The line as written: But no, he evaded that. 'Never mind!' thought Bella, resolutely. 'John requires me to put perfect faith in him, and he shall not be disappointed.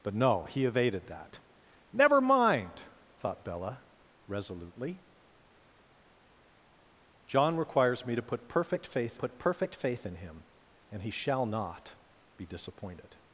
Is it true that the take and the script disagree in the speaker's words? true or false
true